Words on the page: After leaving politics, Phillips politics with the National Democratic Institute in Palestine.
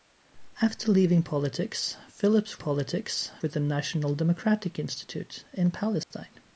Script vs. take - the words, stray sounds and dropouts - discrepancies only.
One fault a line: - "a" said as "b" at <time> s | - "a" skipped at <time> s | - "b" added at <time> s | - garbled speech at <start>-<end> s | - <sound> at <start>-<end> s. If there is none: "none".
- dropout at 6.0-6.1 s